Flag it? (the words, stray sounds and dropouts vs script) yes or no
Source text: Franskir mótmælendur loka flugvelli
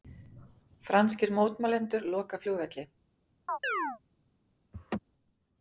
yes